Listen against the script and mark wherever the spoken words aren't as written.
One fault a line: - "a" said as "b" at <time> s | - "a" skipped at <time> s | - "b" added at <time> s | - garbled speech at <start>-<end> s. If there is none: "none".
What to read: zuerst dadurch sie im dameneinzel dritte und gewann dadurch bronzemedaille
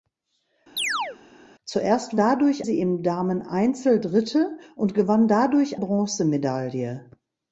none